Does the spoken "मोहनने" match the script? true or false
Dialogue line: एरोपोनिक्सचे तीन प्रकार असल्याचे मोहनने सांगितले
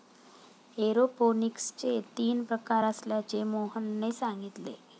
true